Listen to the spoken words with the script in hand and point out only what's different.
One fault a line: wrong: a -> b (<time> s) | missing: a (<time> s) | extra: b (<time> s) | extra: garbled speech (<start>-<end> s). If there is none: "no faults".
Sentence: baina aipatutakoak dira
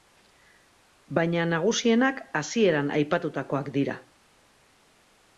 extra: nagusienak hasieran (1.5 s)